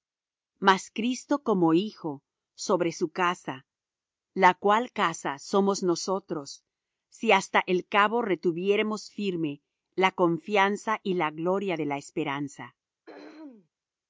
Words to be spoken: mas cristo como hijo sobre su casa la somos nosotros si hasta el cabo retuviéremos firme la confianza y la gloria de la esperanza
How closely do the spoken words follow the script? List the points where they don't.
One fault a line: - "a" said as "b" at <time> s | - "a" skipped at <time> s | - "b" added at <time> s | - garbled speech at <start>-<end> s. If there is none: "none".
- "cual casa" added at 4.5 s